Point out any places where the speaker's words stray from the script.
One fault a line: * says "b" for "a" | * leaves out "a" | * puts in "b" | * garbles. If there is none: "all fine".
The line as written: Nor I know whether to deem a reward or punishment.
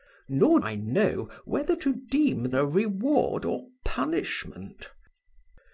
all fine